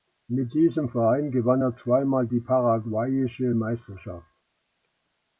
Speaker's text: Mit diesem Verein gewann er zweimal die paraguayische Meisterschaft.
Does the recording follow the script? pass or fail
pass